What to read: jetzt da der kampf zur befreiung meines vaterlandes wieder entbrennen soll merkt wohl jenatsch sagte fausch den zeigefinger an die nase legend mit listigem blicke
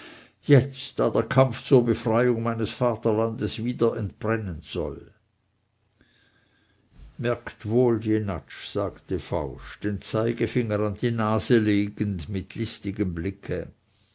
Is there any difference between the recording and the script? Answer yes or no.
no